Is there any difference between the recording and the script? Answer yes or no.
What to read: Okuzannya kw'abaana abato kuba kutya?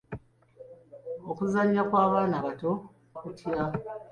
yes